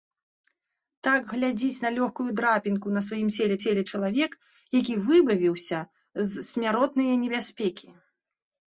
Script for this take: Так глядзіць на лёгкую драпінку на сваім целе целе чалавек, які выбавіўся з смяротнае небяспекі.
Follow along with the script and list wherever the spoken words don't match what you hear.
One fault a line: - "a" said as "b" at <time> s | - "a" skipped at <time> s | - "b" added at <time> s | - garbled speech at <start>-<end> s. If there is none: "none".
none